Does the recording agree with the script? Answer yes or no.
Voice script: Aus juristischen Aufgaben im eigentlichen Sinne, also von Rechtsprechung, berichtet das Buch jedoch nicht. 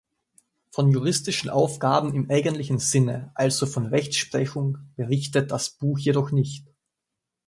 no